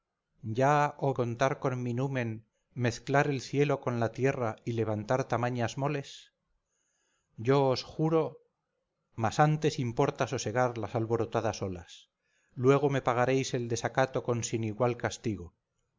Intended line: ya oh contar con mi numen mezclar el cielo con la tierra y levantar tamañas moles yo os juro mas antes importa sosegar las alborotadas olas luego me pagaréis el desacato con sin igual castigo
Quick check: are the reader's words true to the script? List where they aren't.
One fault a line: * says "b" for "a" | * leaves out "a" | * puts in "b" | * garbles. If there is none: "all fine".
all fine